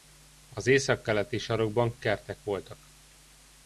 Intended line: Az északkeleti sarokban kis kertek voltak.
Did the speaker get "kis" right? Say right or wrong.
wrong